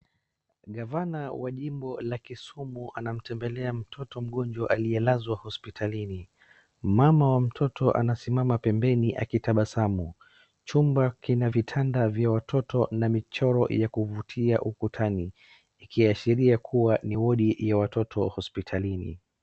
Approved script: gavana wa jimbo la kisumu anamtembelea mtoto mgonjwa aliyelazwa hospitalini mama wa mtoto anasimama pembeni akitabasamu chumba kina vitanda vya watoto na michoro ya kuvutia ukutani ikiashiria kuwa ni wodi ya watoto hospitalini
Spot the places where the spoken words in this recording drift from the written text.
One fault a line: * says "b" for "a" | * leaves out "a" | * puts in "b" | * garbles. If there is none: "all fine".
all fine